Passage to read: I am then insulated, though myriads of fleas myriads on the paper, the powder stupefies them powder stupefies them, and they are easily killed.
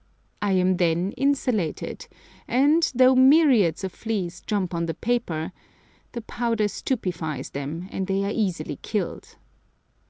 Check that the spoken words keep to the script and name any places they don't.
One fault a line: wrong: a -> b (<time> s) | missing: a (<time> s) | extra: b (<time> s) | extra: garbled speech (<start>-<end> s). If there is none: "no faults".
extra: and (2.5 s)
wrong: myriads -> jump (4.4 s)
missing: powder stupefies them (7.9 s)